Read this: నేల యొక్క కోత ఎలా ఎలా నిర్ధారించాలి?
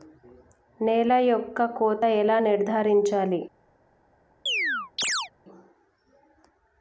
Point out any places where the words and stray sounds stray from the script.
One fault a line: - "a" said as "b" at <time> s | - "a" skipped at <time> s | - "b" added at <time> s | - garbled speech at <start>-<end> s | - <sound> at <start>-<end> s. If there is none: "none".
- "ఎలా" skipped at 2.4 s
- chirp at 4.5-5.3 s